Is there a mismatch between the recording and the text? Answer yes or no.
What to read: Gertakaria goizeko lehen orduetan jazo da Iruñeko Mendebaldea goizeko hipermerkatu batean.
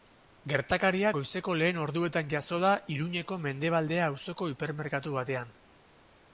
yes